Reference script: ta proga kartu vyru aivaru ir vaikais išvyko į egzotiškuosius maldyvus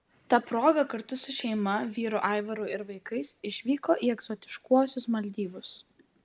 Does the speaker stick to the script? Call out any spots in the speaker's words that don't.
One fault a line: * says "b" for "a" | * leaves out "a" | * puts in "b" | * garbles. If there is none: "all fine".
* puts in "su šeima"